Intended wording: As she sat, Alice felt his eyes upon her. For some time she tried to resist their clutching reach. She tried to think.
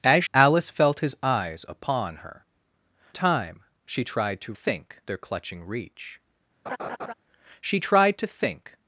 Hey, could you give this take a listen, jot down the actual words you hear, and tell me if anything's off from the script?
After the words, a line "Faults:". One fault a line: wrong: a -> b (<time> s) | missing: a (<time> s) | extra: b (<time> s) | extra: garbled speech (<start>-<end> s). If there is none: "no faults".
As Alice felt his eyes upon her. Time she tried to think their clutching reach. She tried to think.
Faults:
missing: she sat (0.2 s)
missing: For some (2.4 s)
wrong: resist -> think (4.5 s)